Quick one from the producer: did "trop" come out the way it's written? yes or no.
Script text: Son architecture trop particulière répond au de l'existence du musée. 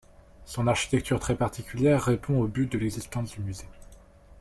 no